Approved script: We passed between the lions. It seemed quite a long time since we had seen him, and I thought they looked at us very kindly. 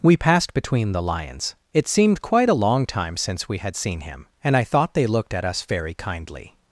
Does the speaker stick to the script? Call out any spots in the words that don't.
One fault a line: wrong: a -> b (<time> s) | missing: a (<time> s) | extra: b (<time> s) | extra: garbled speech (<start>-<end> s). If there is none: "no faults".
no faults